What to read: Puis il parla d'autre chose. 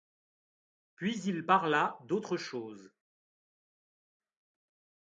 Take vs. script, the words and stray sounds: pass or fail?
pass